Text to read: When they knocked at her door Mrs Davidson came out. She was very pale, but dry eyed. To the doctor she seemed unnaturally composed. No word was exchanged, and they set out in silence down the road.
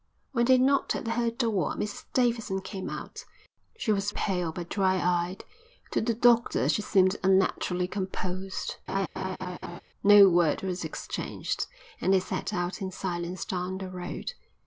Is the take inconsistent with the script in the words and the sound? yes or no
yes